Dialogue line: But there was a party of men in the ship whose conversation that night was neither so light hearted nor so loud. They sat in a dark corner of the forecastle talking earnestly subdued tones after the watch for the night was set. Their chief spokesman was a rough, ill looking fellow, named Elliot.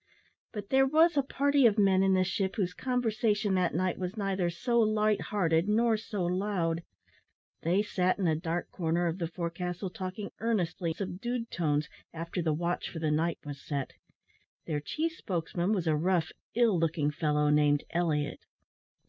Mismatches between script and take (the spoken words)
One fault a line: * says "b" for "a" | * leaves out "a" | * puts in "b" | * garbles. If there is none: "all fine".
all fine